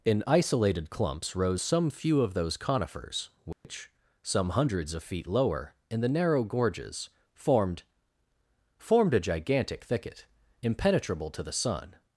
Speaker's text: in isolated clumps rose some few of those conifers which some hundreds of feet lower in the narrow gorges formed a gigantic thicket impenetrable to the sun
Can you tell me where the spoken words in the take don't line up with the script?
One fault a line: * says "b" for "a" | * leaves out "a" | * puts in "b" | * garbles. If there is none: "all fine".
* puts in "formed"